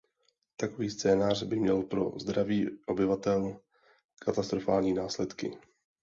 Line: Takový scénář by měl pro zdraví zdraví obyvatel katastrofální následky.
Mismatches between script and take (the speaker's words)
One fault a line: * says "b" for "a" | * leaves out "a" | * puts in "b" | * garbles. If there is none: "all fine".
* leaves out "zdraví"